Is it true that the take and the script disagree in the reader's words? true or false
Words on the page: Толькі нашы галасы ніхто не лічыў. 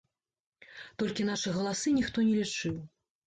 false